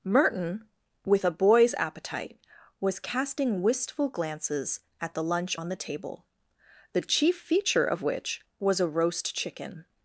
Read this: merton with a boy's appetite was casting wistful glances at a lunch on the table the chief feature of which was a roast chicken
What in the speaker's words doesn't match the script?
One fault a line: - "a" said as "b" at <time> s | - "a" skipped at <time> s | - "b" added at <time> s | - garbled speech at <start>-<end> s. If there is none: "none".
- "a" said as "the" at 5.1 s